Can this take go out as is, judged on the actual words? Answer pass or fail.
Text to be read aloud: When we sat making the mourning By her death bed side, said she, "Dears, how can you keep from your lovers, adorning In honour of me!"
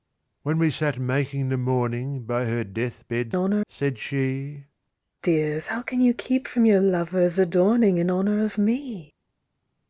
fail